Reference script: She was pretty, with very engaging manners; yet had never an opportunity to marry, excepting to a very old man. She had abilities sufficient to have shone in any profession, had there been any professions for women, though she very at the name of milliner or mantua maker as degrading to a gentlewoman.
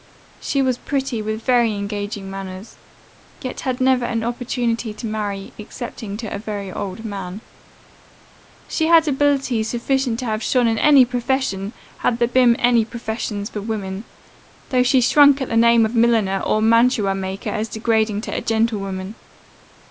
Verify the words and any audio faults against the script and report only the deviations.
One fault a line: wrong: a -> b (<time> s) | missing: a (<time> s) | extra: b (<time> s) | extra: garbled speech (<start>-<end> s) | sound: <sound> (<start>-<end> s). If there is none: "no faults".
wrong: very -> shrunk (15.0 s)